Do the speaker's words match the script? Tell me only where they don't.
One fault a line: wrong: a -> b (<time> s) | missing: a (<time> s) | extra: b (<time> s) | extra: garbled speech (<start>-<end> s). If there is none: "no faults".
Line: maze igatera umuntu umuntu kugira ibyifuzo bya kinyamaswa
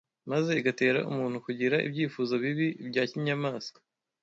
missing: umuntu (1.4 s)
extra: bibi (2.4 s)